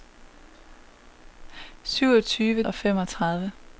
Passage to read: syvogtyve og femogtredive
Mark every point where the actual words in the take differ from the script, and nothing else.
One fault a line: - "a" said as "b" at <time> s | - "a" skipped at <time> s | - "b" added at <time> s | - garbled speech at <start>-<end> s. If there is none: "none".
none